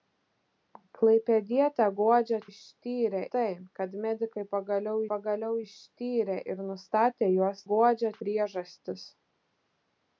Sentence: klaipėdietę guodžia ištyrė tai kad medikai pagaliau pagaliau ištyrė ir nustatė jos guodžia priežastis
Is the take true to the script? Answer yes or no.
yes